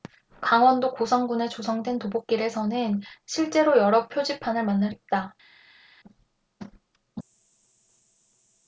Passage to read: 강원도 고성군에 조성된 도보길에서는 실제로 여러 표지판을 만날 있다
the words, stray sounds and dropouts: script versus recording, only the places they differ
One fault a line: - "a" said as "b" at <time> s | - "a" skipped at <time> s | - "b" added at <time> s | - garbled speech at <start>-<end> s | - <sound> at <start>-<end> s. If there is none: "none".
none